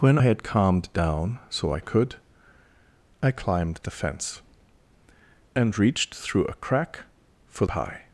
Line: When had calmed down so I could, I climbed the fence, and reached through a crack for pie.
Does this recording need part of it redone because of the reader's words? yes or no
no